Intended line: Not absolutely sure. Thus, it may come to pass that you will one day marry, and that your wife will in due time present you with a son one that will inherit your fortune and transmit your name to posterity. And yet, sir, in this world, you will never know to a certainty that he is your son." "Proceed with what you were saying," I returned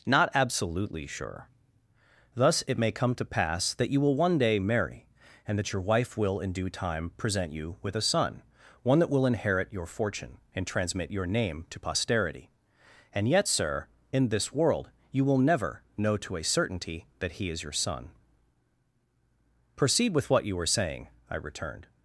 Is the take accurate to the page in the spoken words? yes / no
yes